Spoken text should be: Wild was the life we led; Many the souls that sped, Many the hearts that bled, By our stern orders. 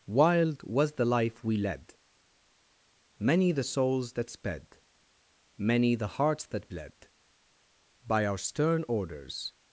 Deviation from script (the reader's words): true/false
false